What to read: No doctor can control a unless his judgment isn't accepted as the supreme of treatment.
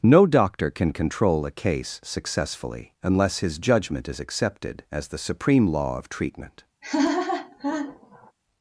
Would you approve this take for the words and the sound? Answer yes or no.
no